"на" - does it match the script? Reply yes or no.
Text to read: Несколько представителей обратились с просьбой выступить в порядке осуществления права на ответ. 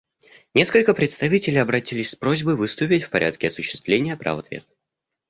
no